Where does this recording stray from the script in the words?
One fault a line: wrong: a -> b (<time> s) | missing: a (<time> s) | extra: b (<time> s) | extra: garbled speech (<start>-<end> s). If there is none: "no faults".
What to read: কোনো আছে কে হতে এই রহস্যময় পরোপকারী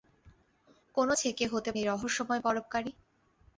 no faults